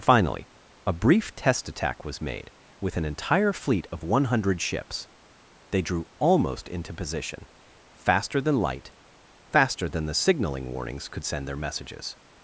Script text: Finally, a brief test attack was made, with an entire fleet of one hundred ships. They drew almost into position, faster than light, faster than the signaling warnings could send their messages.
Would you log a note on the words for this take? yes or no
no